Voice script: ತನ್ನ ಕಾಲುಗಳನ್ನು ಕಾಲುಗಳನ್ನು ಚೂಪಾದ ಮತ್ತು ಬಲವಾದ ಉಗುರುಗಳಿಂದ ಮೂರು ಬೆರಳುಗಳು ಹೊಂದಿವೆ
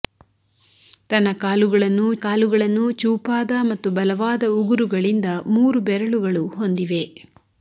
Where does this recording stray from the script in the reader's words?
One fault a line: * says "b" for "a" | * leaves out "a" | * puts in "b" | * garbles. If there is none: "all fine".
all fine